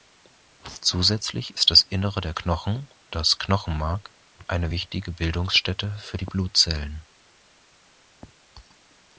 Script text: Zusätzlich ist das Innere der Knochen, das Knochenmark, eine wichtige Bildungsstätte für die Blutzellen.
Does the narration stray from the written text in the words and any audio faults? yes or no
no